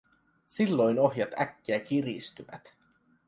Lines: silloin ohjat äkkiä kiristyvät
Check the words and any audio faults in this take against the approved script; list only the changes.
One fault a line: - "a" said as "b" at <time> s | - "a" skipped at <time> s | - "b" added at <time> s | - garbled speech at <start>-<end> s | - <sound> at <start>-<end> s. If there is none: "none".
none